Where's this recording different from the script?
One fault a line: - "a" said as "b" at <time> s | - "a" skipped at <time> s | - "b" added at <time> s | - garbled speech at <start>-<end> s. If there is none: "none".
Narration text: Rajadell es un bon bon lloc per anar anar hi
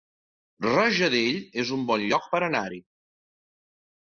- "bon" skipped at 2.1 s
- "anar" skipped at 2.6 s